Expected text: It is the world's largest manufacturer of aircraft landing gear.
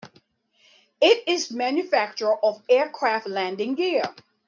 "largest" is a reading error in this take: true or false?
true